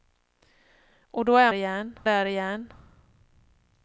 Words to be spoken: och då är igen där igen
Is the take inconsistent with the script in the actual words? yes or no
no